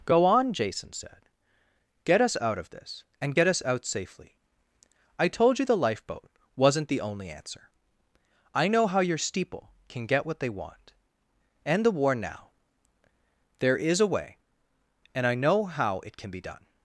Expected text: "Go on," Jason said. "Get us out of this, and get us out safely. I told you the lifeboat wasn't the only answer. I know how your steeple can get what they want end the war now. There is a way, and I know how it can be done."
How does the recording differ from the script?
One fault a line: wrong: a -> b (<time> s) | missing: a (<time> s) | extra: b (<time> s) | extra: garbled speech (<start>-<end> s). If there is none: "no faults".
no faults